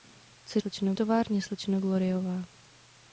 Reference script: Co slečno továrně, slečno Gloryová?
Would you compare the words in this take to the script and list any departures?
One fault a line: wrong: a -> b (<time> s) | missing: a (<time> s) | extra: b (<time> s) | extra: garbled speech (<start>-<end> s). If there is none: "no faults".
no faults